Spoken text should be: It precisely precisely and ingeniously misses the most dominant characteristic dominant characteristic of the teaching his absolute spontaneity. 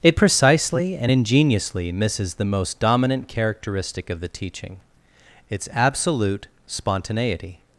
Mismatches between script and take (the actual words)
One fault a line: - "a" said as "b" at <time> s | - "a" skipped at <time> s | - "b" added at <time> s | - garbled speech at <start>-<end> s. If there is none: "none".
- "precisely" skipped at 1.0 s
- "dominant characteristic" skipped at 4.1 s
- "his" said as "its" at 5.5 s